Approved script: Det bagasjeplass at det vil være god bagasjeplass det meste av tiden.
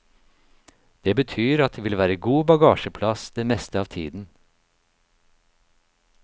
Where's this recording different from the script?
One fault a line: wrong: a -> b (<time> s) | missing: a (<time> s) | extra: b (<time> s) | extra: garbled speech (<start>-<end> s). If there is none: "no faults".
wrong: bagasjeplass -> betyr (1.2 s)